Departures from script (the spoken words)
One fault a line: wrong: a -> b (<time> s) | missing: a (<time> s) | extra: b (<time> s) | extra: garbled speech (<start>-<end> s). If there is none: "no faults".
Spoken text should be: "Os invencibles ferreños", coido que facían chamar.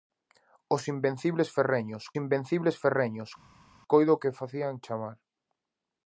extra: invencibles ferreños (2.2 s)